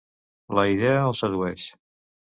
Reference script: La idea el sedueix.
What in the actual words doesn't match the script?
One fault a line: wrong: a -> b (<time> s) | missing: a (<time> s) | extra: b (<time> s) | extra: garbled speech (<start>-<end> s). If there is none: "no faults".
no faults